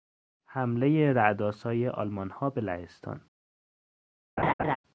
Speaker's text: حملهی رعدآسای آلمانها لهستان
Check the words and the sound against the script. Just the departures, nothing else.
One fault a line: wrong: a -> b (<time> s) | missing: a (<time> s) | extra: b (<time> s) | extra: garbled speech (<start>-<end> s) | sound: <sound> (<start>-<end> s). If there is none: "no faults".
extra: به (2.5 s)
sound: laugh (4.4-4.8 s)